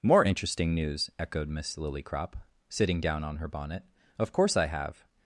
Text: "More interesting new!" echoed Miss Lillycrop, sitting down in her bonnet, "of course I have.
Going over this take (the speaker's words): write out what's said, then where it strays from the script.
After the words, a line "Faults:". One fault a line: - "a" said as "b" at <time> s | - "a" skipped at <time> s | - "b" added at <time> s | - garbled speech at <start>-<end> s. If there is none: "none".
"More interesting news!" echoed Miss Lillycrop, sitting down on her bonnet, "of course I have.
Faults:
- "new" said as "news" at 0.7 s
- "in" said as "on" at 3.2 s